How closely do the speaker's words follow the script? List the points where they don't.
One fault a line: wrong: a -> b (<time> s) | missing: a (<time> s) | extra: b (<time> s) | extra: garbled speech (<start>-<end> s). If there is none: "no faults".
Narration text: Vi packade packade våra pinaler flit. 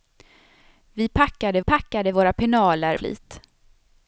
no faults